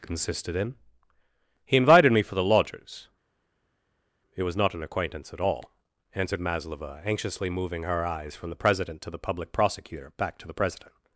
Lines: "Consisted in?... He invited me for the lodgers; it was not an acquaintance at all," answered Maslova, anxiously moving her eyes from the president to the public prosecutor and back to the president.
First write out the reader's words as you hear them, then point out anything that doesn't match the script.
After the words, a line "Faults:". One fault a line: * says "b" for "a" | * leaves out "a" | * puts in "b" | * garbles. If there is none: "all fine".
"Consisted in?... He invited me for the lodgers; it was not an acquaintance at all," answered Maslova, anxiously moving her eyes from the president to the public prosecutor back to the president.
Faults:
* leaves out "and"